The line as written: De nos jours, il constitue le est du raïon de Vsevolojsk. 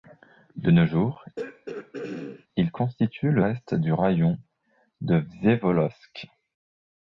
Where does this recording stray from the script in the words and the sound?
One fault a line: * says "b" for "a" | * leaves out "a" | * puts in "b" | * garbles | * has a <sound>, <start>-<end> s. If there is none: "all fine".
* has a throat clearing, 1.4-2.5 s